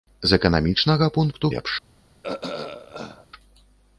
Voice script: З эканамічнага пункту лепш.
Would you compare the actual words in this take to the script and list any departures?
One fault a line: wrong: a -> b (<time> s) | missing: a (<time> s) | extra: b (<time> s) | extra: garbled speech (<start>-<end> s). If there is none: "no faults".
no faults